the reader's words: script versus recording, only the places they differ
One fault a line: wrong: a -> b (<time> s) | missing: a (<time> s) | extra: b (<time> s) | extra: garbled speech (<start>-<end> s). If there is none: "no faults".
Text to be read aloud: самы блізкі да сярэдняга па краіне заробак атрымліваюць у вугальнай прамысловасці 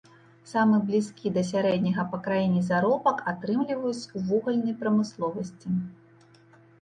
no faults